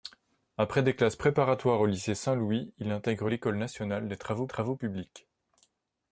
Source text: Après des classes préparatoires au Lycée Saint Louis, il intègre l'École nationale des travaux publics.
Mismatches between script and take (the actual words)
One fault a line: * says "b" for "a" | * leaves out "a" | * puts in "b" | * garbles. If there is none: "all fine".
* puts in "travaux"